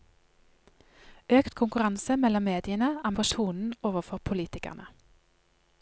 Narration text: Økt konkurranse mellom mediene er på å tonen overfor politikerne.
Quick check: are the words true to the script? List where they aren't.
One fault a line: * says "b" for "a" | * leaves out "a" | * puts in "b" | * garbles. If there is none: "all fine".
all fine